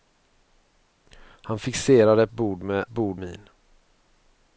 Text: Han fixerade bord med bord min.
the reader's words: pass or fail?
pass